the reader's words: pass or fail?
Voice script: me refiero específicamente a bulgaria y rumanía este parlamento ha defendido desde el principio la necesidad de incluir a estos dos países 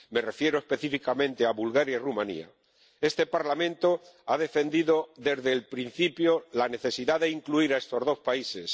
pass